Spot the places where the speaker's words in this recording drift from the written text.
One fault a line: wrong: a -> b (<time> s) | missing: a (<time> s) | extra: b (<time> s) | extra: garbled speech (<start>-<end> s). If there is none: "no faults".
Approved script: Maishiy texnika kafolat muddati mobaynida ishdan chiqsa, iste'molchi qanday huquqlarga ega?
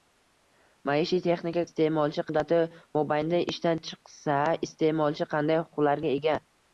wrong: kafolat -> iste'molchi (1.7 s)